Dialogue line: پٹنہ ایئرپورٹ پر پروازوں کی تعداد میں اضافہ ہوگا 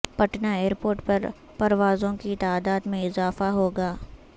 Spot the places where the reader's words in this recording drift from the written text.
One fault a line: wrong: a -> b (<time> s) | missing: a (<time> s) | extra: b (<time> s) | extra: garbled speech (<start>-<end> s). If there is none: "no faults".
no faults